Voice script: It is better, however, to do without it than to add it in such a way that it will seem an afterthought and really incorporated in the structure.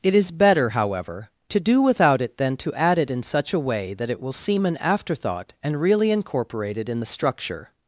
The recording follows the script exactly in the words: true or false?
true